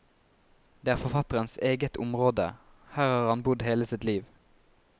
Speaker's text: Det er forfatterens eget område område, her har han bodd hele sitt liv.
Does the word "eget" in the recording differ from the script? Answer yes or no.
no